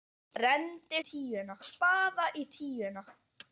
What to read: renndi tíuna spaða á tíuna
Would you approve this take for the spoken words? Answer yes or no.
yes